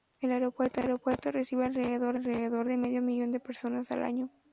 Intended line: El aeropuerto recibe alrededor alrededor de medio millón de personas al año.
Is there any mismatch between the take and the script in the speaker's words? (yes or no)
no